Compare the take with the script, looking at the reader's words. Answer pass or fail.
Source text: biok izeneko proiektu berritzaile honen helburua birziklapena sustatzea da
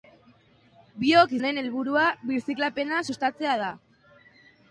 fail